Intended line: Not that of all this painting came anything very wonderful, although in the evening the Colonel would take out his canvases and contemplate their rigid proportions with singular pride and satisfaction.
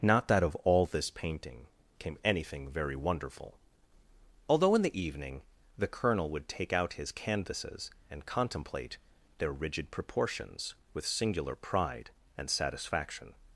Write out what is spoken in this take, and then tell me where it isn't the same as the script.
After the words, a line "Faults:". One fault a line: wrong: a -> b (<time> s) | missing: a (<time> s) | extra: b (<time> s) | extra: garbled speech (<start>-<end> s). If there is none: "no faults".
Not that of all this painting came anything very wonderful, although in the evening the Colonel would take out his canvases and contemplate their rigid proportions with singular pride and satisfaction.
Faults:
no faults